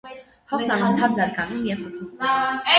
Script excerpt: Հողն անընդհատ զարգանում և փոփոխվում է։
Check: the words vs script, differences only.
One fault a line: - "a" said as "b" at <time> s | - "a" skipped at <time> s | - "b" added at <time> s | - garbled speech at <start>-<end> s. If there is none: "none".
none